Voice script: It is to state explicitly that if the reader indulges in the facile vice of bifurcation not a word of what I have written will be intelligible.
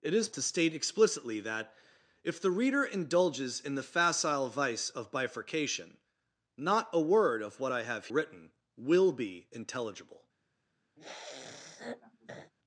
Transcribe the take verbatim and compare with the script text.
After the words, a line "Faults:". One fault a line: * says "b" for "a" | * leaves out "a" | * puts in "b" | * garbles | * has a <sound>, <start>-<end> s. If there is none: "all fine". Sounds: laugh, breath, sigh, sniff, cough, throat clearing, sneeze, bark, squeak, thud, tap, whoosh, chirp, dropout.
It is to state explicitly that if the reader indulges in the facile vice of bifurcation not a word of what I have written will be intelligible.
Faults:
* has a sniff, 11.0-12.5 s